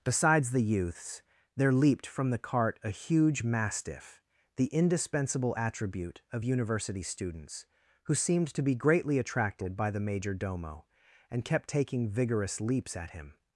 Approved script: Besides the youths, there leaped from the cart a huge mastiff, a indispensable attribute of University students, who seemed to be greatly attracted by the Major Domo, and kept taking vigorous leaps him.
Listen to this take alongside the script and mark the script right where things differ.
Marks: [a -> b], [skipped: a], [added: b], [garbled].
Besides the youths, there leaped from the cart a huge mastiff, [a -> the] indispensable attribute of University students, who seemed to be greatly attracted by the Major Domo, and kept taking vigorous leaps [added: at] him.